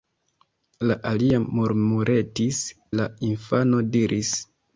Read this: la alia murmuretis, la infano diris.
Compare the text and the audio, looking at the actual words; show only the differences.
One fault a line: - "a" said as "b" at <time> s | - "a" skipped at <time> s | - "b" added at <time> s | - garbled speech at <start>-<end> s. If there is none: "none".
none